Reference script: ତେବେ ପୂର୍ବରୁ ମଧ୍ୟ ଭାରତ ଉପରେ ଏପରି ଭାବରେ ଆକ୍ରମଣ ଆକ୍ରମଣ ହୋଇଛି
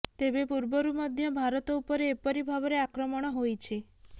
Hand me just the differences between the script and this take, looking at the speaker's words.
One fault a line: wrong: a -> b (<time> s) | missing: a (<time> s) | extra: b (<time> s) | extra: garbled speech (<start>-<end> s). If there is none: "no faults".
missing: ଆକ୍ରମଣ (3.4 s)